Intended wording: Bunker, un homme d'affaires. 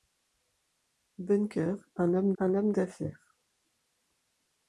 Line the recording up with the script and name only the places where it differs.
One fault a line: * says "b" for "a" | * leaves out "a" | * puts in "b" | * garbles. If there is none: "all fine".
* puts in "un homme"